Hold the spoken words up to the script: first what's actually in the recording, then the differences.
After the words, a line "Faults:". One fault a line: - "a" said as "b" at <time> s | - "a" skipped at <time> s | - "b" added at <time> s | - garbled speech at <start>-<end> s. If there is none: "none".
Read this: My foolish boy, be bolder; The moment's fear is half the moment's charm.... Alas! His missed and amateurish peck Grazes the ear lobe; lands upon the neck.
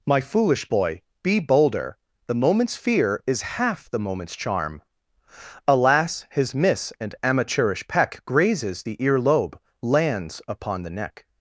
My foolish boy, be bolder; The moment's fear is half the moment's charm.... Alas! His miss and amateurish peck Grazes the ear lobe; lands upon the neck.
Faults:
- "missed" said as "miss" at 6.5 s